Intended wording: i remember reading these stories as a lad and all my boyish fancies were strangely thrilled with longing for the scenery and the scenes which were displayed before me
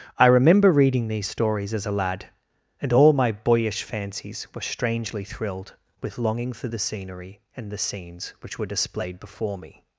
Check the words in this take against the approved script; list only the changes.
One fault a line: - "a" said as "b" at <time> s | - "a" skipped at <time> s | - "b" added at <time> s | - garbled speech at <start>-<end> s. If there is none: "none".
none